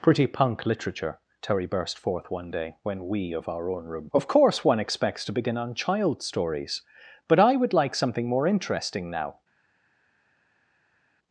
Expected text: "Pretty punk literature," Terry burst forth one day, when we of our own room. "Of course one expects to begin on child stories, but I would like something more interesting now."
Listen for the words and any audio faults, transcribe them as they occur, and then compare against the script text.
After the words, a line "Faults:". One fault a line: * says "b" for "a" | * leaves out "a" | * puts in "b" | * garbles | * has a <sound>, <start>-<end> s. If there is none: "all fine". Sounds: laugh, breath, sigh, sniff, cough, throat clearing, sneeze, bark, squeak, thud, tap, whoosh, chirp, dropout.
"Pretty punk literature," Terry burst forth one day, when we of our own room. "Of course one expects to begin on child stories, but I would like something more interesting now."
Faults:
all fine